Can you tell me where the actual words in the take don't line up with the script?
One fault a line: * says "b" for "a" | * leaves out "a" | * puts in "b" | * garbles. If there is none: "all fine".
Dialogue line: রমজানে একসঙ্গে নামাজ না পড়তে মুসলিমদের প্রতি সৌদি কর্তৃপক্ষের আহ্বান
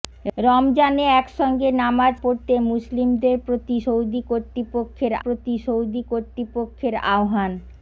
* leaves out "না"
* puts in "প্রতি সৌদি কর্তৃপক্ষের"